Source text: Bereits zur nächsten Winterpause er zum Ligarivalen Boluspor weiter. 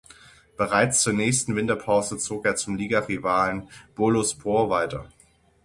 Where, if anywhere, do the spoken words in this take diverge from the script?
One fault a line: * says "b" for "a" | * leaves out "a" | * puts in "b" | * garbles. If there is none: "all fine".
* puts in "zog"